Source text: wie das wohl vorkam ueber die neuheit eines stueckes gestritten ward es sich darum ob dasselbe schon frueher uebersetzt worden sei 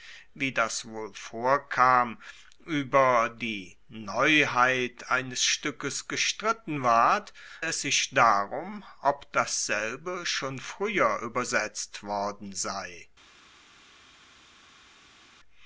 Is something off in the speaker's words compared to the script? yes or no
no